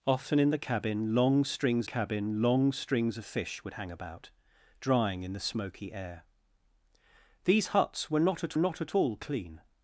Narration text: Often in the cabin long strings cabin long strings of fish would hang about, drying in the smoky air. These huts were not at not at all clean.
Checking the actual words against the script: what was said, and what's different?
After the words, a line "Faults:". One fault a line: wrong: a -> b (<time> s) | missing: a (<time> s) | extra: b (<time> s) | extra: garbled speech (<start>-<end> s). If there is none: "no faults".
Often in the cabin long strings cabin long strings of fish would hang about, drying in the smoky air. These huts were not at not at all clean.
Faults:
no faults